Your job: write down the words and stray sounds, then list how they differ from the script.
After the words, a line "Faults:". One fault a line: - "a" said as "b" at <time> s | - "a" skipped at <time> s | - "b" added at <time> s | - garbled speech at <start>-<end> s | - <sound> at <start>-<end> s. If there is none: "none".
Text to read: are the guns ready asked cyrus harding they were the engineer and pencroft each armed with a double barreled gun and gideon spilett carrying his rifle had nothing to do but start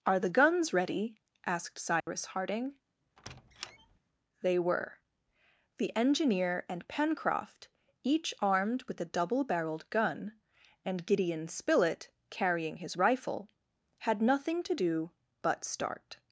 are the guns ready asked cyrus harding they were the engineer and pencroft each armed with a double barreled gun and gideon spilett carrying his rifle had nothing to do but start
Faults:
- dropout at 2.0-2.1 s
- squeak at 3.2-4.0 s